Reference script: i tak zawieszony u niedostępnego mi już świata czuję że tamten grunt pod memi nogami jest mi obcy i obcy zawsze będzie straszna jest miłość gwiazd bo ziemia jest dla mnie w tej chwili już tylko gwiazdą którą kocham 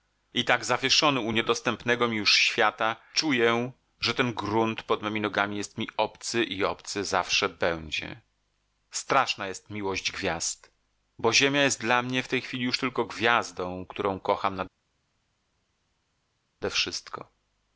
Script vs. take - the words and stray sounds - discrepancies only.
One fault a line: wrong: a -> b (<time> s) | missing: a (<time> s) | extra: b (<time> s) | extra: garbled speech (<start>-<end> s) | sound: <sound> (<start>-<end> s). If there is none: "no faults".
wrong: tamten -> ten (4.1 s)